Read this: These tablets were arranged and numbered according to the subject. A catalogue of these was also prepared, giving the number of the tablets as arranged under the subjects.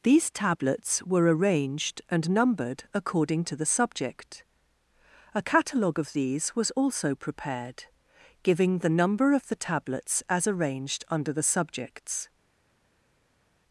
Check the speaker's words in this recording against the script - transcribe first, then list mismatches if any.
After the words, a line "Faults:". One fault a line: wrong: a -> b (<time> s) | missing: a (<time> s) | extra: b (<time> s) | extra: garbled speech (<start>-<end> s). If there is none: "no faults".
These tablets were arranged and numbered according to the subject. A catalogue of these was also prepared, giving the number of the tablets as arranged under the subjects.
Faults:
no faults